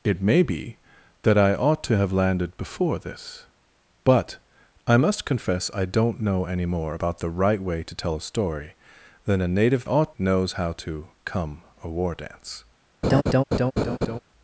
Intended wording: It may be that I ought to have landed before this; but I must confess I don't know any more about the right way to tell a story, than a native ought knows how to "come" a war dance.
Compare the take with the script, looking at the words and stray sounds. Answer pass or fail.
fail